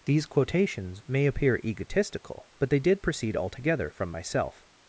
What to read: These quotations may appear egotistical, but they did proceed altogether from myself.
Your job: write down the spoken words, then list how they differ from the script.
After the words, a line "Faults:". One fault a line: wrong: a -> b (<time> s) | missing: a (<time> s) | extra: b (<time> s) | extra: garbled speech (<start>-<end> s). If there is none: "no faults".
These quotations may appear egotistical, but they did proceed altogether from myself.
Faults:
no faults